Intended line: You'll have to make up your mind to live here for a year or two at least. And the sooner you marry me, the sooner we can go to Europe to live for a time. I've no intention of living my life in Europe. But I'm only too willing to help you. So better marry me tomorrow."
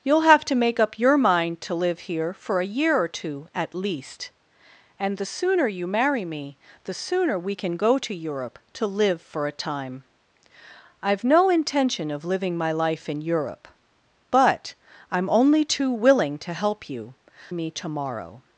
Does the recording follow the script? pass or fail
fail